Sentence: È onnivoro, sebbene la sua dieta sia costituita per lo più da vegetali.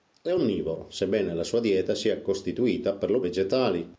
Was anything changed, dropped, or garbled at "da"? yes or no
yes